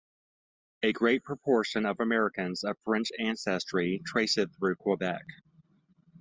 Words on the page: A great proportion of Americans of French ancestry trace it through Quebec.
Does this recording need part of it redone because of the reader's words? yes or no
no